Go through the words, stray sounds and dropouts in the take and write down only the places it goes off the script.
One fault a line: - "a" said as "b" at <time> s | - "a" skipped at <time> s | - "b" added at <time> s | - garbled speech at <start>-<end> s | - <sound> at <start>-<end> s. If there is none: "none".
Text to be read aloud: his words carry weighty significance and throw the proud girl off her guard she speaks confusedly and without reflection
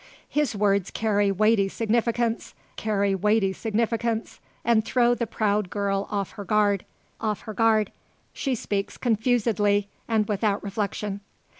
- "carry weighty significance" added at 2.7 s
- "off her guard" added at 7.2 s